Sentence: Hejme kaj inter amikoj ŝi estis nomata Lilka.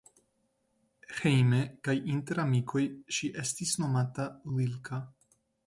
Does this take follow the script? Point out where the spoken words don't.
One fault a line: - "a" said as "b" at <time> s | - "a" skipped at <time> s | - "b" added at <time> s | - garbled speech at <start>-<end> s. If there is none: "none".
none